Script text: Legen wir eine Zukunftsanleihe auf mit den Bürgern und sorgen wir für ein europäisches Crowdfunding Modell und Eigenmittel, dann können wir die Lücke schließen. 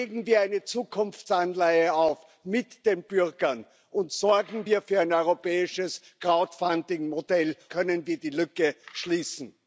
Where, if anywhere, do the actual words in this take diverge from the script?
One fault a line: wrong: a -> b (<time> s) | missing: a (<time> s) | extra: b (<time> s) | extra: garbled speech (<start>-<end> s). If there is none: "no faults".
missing: und Eigenmittel dann (7.6 s)